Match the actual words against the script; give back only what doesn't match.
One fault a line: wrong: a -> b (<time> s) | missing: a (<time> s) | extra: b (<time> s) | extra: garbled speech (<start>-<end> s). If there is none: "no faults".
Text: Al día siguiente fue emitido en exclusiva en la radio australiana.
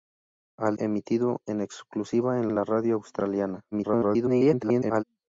missing: día siguiente fue (0.8 s)
extra: en (2.5 s)
extra: garbled speech (3.7-5.0 s)